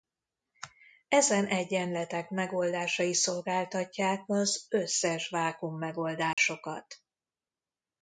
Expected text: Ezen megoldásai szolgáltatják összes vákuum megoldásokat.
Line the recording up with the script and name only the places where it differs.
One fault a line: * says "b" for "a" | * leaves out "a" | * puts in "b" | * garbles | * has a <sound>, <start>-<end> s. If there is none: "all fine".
* puts in "egyenletek"
* puts in "az"
* has a dropout, 6.3-6.4 s